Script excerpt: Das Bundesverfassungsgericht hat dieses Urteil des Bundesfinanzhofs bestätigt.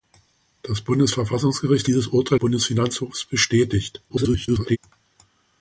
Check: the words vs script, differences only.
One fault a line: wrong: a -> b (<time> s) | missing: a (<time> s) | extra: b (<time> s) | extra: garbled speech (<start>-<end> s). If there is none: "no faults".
missing: hat (1.9 s)
missing: des (2.4 s)
extra: garbled speech (4.1-4.8 s)